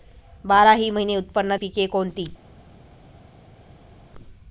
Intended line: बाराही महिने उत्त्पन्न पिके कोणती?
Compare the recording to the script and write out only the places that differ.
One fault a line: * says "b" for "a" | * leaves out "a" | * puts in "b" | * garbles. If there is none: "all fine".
all fine